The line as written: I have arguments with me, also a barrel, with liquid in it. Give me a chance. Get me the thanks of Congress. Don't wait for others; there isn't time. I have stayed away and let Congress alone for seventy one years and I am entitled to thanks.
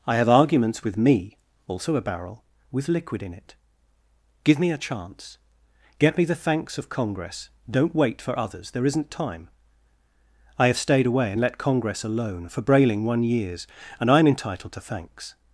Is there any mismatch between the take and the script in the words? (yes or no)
yes